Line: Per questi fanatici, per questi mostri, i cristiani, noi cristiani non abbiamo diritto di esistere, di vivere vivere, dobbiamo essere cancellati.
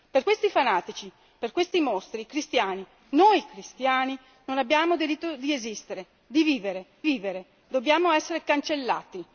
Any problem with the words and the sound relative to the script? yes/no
no